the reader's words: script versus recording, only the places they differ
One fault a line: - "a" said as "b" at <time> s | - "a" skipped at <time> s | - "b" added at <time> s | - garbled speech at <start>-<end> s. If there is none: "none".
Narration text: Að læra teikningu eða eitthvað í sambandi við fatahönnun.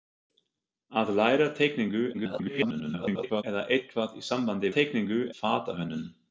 - garbled speech at 2.1-3.4 s
- "við" said as "teikningu" at 4.8 s